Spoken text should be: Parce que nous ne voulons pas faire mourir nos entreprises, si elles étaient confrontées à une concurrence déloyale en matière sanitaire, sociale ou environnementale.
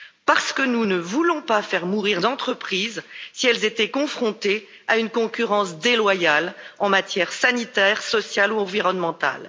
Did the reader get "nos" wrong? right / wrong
wrong